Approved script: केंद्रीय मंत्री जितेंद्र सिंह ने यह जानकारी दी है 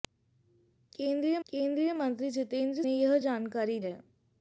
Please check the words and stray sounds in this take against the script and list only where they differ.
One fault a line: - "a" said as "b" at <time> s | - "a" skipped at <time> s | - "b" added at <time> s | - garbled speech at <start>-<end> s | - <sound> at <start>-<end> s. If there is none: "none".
- "केंद्रीय" added at 1.5 s
- "सिंह" skipped at 2.8 s
- "दी" skipped at 3.8 s